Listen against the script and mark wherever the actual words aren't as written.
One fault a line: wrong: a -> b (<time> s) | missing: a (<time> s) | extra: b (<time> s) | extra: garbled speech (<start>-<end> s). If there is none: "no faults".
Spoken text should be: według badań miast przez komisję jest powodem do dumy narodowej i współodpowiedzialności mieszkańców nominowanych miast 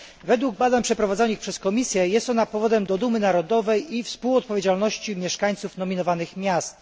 wrong: miast -> przeprowadzonych (0.8 s)
extra: ona (2.3 s)